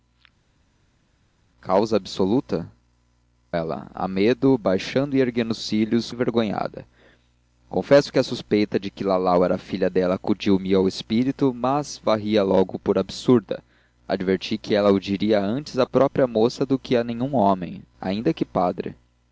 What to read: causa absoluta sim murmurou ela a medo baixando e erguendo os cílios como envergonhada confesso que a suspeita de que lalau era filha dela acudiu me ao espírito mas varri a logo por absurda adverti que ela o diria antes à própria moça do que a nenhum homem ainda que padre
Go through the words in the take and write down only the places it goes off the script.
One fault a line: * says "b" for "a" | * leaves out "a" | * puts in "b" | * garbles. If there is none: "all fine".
* leaves out "sim murmurou"
* leaves out "como"